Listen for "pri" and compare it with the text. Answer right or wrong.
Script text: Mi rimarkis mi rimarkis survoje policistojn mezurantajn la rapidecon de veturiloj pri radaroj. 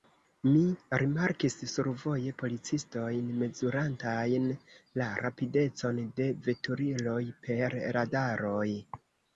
wrong